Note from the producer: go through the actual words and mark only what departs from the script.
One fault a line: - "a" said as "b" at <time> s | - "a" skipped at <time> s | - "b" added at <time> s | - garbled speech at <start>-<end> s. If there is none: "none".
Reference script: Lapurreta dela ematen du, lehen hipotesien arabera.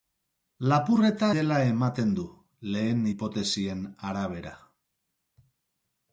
none